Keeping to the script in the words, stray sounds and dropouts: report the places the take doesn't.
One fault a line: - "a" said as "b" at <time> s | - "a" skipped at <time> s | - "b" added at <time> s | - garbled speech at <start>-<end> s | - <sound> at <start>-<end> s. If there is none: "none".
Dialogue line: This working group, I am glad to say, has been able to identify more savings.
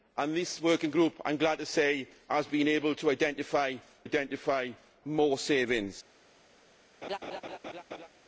- "identify" added at 4.0 s
- laugh at 7.0-8.1 s